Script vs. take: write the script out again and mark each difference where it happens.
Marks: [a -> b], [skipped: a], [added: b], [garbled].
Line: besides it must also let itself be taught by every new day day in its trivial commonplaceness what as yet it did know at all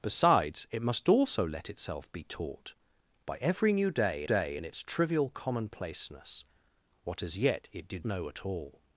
besides it must also let itself be taught by every new day day in its trivial commonplaceness what as yet it did know at all